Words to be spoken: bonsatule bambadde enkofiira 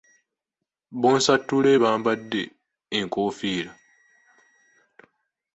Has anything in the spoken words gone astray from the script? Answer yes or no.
no